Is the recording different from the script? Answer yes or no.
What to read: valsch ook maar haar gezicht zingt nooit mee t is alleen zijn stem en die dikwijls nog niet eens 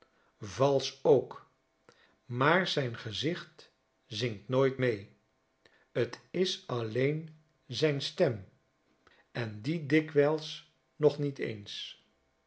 yes